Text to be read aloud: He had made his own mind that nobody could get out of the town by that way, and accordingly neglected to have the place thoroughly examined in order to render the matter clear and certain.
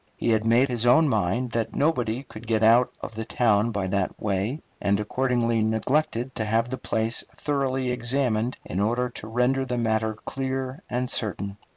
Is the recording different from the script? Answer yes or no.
no